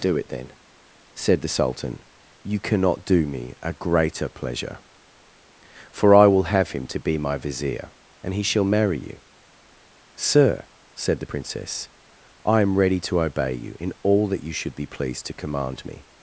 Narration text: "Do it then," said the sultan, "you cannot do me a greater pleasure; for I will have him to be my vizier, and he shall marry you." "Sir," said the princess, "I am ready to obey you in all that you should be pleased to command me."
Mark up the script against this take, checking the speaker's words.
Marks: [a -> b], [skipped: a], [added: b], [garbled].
"Do it then," said the sultan, "you cannot do me a greater pleasure; for I will have him to be my vizier, and he shall marry you." "Sir," said the princess, "I am ready to obey you in all that you should be pleased to command me."